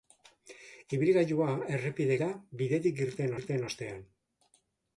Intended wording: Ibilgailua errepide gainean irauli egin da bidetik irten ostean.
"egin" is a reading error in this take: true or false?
true